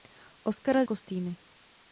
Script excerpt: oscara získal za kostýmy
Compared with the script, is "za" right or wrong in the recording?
wrong